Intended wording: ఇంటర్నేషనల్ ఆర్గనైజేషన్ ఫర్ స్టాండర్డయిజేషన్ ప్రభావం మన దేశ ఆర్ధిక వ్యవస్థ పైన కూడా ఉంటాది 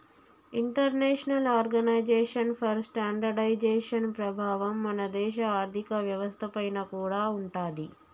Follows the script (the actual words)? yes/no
yes